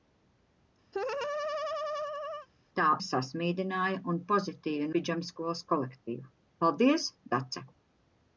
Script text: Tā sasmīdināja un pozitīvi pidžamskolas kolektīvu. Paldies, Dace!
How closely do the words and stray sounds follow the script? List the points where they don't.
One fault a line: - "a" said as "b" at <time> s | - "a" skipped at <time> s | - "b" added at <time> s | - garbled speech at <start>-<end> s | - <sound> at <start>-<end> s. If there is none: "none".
- laugh at 0.9-2.5 s